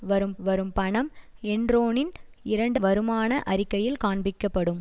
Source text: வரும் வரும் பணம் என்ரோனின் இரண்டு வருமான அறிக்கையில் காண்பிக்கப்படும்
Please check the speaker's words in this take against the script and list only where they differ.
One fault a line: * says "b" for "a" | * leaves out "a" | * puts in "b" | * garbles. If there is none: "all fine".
all fine